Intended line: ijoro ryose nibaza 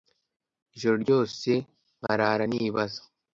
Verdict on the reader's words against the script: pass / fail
fail